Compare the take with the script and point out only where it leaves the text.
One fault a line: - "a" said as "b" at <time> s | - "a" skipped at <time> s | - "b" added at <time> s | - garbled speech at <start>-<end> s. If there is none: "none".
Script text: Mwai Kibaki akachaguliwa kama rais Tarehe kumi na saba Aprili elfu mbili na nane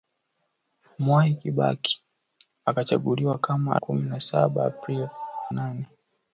- "rais Tarehe" skipped at 3.8 s
- "elfu mbili na" skipped at 5.1 s